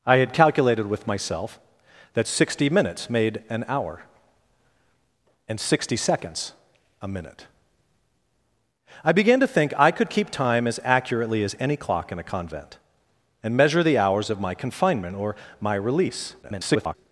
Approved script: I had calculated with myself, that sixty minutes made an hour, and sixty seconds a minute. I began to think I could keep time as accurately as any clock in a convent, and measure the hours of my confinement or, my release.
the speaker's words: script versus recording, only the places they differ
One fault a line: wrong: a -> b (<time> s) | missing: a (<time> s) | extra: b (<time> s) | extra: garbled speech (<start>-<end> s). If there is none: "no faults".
extra: garbled speech (16.4-16.9 s)